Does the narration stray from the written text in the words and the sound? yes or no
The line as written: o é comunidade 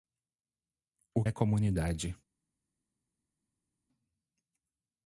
no